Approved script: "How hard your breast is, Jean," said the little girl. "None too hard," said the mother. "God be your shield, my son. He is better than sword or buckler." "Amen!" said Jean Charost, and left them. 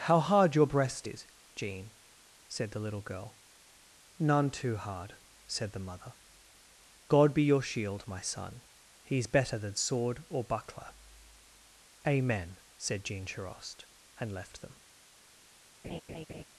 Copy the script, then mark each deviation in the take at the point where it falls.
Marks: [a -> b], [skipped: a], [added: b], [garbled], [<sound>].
"How hard your breast is, Jean," said the little girl. "None too hard," said the mother. "God be your shield, my son. He is better than sword or buckler." "Amen!" said Jean Charost, and left them. [laugh]